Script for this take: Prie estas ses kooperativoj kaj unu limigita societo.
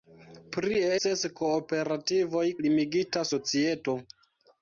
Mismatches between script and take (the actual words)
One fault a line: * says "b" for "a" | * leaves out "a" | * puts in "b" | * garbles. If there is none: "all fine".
* leaves out "estas"
* leaves out "kaj unu"